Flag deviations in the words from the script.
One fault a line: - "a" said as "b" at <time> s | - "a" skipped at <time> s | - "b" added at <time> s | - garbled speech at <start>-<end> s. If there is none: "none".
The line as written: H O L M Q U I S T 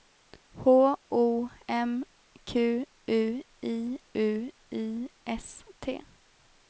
- "L" skipped at 1.5 s
- "U I" added at 4.1 s